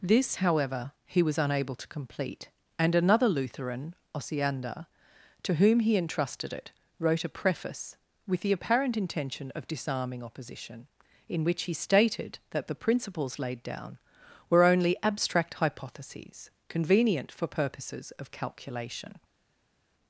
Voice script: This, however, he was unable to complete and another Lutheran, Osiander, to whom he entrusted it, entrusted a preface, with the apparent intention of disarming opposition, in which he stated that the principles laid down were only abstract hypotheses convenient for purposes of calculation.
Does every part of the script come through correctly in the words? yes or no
no